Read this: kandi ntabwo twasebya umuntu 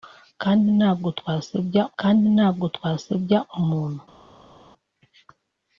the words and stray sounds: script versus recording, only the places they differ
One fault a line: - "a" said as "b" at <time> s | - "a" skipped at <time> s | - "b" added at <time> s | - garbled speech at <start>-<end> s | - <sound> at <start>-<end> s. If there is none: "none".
- "kandi ntabwo twasebya" added at 2.0 s